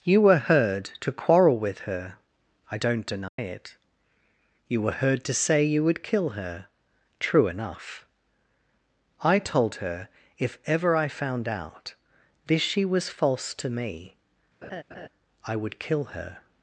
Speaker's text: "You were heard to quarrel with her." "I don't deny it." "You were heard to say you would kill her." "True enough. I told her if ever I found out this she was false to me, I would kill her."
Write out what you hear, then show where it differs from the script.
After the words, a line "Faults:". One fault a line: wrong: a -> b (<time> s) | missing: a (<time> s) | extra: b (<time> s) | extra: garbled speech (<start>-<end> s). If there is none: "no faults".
"You were heard to quarrel with her." "I don't deny it." "You were heard to say you would kill her." "True enough. I told her if ever I found out this she was false to me, I would kill her."
Faults:
no faults